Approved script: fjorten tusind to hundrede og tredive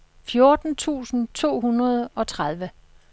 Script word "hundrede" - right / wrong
right